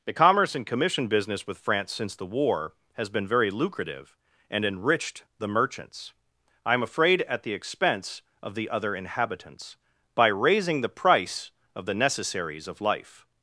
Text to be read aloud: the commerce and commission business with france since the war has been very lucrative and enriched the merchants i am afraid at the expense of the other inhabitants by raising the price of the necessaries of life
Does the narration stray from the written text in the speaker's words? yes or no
no